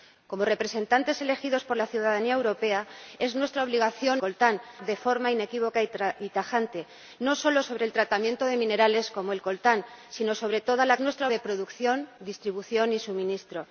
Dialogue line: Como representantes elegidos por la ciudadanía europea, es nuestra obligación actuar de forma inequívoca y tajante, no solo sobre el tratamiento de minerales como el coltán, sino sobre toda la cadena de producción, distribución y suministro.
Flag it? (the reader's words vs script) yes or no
yes